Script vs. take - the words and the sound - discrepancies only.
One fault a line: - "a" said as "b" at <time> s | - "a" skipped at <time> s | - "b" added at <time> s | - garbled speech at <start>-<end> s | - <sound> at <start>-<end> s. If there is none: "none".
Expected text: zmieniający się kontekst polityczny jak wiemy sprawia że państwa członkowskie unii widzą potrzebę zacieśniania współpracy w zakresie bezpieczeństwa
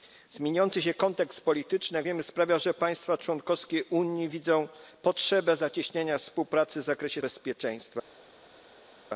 none